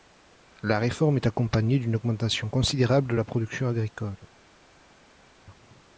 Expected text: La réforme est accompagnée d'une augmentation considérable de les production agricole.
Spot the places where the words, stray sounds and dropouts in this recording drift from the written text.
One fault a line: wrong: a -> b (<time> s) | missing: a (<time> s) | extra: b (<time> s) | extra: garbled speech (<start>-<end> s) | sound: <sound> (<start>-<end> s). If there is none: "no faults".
wrong: les -> la (3.1 s)